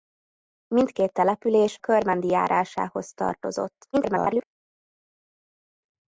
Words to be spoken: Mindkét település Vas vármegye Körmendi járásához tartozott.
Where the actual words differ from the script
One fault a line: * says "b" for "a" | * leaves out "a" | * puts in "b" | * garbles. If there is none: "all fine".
* leaves out "Vas vármegye"
* garbles